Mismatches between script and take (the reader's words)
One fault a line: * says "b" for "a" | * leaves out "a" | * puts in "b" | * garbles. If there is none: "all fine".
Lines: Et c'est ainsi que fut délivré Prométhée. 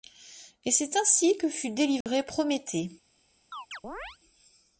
all fine